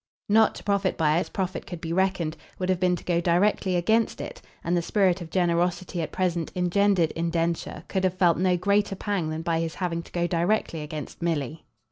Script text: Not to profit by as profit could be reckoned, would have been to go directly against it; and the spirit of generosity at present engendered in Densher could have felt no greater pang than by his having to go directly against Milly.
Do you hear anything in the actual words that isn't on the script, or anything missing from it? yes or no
no